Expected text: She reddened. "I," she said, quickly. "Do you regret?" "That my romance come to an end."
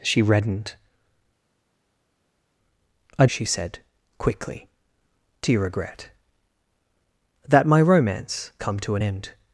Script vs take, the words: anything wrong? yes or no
no